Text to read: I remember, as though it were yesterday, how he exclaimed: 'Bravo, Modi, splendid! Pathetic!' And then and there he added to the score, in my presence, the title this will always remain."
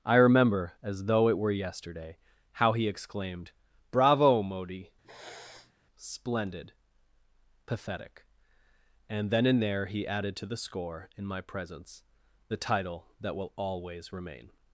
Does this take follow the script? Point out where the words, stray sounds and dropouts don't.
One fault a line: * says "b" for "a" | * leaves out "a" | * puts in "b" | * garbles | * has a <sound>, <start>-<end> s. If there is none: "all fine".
* has a sniff, 5.0-5.7 s
* says "that" for "this"